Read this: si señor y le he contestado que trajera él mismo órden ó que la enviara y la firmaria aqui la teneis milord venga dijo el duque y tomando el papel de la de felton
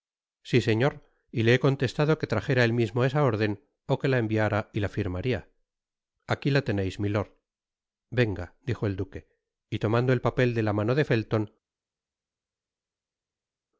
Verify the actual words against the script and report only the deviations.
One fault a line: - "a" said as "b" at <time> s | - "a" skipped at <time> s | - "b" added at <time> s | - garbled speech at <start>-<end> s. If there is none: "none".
- "esa" added at 3.0 s
- "mano" added at 10.7 s